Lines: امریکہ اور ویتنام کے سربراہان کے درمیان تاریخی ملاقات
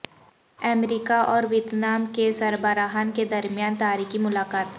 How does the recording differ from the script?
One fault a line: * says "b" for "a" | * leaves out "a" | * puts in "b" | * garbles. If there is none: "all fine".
all fine